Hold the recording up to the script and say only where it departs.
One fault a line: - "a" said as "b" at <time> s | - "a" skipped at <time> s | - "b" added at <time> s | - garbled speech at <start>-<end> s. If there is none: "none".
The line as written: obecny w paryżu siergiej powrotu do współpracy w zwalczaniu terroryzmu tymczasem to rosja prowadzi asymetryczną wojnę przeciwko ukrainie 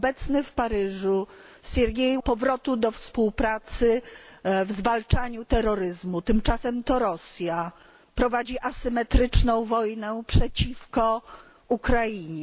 none